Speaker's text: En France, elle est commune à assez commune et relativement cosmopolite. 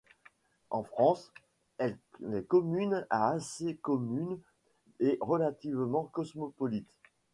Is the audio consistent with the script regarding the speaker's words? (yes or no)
yes